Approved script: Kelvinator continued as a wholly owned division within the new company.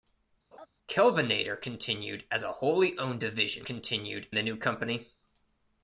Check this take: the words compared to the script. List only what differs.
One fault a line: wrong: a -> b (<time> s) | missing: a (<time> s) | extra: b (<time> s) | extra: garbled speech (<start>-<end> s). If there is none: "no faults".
wrong: within -> continued (3.6 s)